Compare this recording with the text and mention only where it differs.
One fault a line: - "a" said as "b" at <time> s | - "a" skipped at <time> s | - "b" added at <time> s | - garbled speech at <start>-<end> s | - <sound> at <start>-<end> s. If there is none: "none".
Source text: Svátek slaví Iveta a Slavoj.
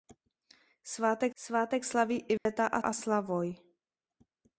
- "svátek" added at 1.3 s
- dropout at 2.4-2.5 s
- "a" added at 2.8 s